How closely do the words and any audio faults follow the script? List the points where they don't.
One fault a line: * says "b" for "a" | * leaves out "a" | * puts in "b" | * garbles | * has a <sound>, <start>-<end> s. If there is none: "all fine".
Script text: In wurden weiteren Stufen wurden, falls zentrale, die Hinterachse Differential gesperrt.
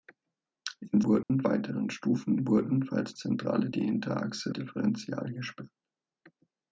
* has a dropout, 1.2-1.3 s